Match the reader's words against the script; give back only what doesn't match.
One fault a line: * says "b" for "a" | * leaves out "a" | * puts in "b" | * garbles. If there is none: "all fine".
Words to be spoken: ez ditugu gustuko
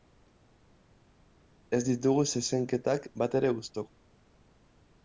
* puts in "zezenketak batere"